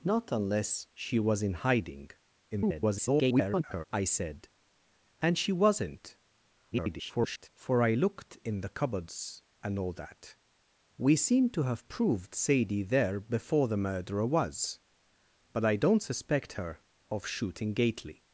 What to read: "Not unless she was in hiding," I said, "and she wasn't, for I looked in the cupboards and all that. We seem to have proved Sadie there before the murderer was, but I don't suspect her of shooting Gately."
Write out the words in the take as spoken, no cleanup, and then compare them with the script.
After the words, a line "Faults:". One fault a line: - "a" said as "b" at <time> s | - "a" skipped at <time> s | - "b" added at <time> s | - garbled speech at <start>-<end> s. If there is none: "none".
"Not unless she was in hiding," [garbled] I said, "and she wasn't, [garbled] for I looked in the cupboards and all that. We seem to have proved Sadie there before the murderer was, but I don't suspect her of shooting Gately."
Faults:
- garbled speech at 2.5-3.8 s
- garbled speech at 6.7-7.5 s